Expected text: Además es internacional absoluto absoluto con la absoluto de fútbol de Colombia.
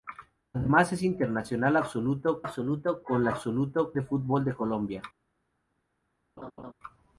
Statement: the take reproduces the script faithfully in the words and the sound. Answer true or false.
false